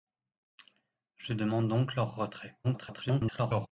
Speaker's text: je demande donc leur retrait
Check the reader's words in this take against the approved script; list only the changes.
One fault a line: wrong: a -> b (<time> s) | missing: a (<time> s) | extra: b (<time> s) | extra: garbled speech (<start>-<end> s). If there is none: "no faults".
extra: garbled speech (2.6-3.7 s)